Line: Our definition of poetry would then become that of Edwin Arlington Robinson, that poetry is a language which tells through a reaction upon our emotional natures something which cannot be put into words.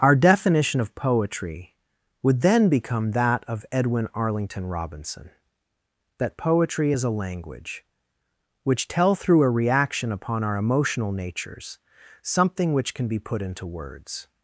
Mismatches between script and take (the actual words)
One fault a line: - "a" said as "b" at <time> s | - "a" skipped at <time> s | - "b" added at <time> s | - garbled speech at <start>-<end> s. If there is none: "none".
- "tells" said as "tell" at 8.9 s
- "cannot" said as "can" at 12.9 s